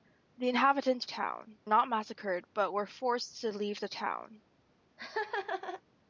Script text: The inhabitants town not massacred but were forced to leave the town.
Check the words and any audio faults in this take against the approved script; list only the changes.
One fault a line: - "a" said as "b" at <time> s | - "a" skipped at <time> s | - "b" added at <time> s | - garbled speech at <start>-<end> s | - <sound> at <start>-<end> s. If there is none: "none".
- laugh at 5.0-5.8 s